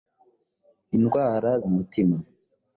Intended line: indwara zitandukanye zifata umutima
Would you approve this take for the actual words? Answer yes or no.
no